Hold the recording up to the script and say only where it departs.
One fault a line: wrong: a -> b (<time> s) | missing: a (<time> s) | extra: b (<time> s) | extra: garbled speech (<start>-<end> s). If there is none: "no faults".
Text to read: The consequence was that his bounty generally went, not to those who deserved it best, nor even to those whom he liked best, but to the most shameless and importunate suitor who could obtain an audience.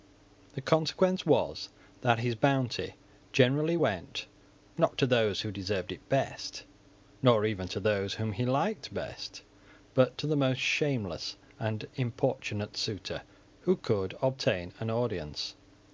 no faults